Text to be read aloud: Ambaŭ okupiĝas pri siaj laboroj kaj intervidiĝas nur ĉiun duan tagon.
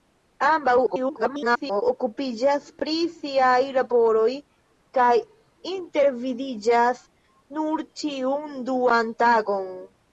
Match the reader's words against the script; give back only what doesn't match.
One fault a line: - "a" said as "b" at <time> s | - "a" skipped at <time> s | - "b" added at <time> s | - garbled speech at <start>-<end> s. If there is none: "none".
- garbled speech at 0.9-1.8 s